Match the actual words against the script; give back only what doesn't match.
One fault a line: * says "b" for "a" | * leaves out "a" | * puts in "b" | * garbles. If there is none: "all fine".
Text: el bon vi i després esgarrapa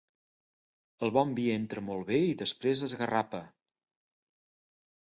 * puts in "entra molt bé"